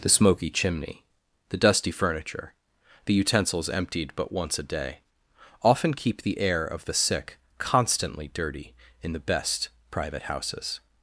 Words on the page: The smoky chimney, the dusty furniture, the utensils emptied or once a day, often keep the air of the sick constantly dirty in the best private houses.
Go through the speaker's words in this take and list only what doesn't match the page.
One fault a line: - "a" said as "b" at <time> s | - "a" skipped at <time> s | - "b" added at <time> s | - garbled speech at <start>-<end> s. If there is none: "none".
- "or" said as "but" at 4.2 s